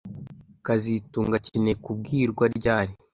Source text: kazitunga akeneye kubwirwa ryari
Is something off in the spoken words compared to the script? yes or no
no